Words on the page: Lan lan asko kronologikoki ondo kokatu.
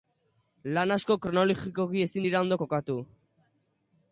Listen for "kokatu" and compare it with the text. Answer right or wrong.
right